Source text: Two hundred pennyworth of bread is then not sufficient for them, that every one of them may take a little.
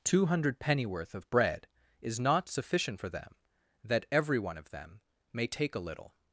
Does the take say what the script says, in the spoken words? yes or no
no